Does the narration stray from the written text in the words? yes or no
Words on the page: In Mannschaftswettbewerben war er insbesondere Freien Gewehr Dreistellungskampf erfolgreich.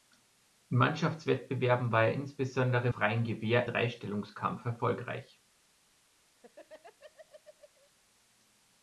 no